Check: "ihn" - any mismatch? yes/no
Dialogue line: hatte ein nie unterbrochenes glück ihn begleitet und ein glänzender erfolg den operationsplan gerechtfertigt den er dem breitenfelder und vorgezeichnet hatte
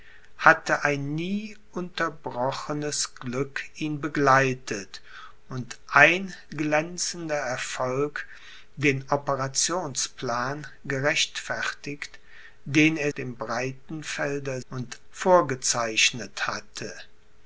no